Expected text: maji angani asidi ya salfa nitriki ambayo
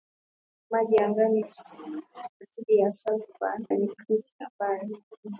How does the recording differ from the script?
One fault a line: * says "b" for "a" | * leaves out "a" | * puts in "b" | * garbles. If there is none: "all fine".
all fine